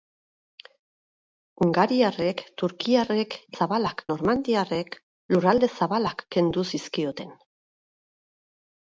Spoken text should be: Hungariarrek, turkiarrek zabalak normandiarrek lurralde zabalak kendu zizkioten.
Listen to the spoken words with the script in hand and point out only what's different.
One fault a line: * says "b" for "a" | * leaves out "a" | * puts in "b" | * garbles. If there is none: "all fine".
all fine